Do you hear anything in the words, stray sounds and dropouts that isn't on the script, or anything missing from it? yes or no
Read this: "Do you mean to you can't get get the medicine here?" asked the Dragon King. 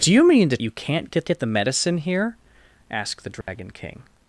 yes